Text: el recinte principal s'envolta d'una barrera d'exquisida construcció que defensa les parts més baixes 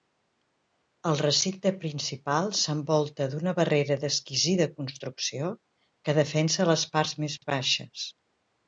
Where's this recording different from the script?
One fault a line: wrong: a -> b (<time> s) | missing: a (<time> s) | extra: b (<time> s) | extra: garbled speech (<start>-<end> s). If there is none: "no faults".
no faults